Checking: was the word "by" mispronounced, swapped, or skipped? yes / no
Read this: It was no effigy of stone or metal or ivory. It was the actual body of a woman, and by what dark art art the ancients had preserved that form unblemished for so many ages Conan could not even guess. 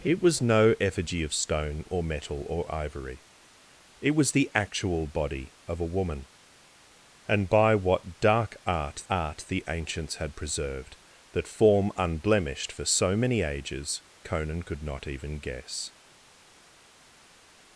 no